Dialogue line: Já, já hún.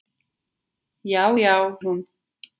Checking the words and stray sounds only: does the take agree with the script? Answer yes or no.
yes